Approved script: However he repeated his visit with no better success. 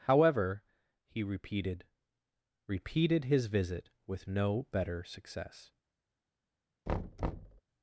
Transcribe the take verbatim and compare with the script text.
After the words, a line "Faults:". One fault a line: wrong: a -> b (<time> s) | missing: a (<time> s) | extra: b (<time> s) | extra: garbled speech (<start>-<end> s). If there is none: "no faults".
However he repeated repeated his visit with no better success.
Faults:
extra: repeated (2.6 s)